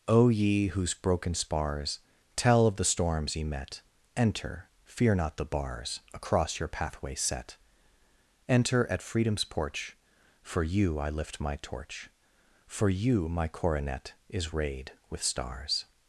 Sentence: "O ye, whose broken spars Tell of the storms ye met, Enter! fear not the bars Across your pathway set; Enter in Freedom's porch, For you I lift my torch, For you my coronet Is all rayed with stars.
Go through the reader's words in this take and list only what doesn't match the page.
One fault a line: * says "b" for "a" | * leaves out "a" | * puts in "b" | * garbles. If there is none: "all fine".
* says "at" for "in"
* leaves out "all"